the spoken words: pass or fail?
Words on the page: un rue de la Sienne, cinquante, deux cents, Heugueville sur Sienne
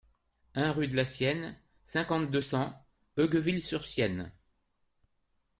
pass